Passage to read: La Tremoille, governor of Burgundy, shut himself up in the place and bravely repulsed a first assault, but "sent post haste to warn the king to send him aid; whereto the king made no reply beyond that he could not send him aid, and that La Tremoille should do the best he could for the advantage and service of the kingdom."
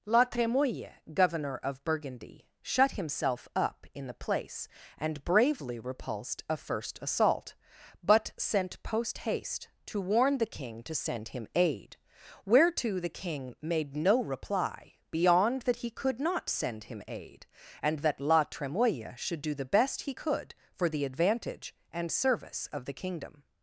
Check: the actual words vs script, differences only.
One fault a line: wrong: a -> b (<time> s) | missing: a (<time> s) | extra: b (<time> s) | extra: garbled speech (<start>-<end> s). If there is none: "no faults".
no faults